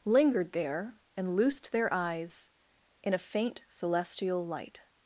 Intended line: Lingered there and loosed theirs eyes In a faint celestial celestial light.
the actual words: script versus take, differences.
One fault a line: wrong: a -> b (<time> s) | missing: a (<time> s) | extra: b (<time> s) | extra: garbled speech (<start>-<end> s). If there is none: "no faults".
wrong: theirs -> their (1.7 s)
missing: celestial (4.4 s)